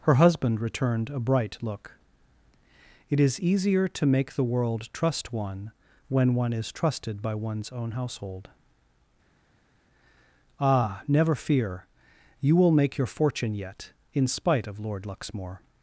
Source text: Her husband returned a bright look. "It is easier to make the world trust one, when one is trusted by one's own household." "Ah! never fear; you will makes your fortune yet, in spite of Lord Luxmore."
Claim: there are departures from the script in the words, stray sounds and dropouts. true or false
true